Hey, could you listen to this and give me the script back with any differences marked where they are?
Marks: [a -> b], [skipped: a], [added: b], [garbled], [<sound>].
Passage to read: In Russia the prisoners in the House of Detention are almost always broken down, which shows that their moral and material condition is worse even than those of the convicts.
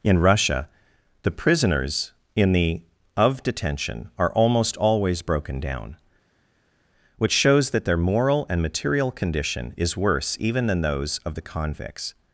In Russia the prisoners in the [skipped: House] of Detention are almost always broken down, which shows that their moral and material condition is worse even than those of the convicts.